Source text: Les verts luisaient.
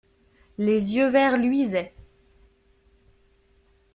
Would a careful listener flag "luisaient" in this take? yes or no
no